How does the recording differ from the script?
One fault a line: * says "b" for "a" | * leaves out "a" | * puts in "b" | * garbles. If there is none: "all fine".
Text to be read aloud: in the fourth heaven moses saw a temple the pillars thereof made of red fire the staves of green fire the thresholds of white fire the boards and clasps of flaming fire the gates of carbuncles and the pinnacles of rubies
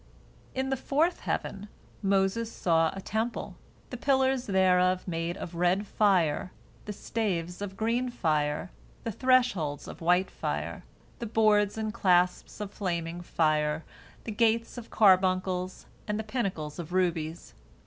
all fine